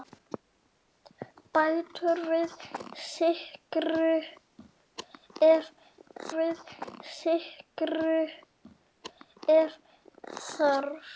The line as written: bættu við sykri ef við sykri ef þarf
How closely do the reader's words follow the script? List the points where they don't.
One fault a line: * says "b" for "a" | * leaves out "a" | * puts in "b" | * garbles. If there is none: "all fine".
all fine